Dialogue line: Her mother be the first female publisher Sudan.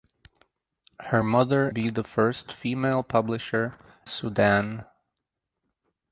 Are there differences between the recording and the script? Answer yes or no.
no